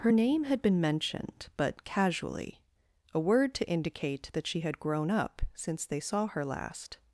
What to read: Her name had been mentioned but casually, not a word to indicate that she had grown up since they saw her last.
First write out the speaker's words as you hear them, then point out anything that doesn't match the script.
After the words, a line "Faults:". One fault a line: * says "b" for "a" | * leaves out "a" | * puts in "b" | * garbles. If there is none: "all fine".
Her name had been mentioned but casually, a word to indicate that she had grown up since they saw her last.
Faults:
* leaves out "not"